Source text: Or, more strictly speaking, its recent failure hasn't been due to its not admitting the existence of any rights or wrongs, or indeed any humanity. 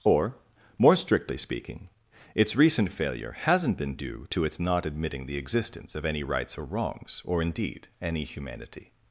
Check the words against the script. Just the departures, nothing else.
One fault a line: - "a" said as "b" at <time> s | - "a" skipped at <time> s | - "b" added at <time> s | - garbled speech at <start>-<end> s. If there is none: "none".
none